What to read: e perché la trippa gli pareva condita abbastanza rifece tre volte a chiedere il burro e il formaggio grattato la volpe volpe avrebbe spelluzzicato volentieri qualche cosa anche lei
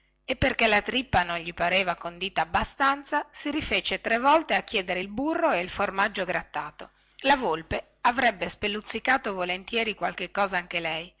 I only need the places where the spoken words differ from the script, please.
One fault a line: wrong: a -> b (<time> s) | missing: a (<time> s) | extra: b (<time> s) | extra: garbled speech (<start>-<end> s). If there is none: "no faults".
extra: non (1.2 s)
extra: si (3.3 s)
missing: volpe (7.9 s)